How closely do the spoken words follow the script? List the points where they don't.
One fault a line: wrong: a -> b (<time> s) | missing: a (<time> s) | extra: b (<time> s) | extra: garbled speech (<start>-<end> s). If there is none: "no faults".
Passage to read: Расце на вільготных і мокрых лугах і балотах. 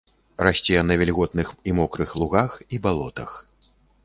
no faults